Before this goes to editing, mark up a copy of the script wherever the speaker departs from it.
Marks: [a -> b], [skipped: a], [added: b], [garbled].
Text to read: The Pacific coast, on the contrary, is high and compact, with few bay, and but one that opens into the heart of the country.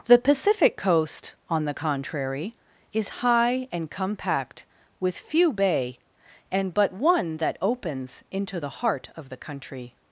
The Pacific coast, on the contrary, is high and compact, with few bay, and but one that opens into the heart of the country.